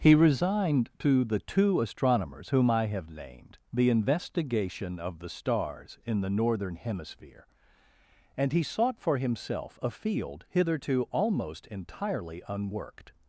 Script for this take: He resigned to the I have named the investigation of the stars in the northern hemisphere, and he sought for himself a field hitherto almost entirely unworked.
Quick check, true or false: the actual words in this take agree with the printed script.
false